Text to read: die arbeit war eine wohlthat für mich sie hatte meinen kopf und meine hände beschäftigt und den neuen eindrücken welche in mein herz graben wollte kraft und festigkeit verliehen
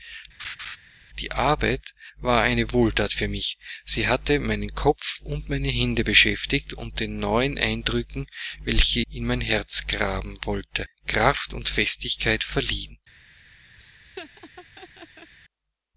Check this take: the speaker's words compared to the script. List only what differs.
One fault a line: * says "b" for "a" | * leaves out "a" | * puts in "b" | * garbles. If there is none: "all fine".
all fine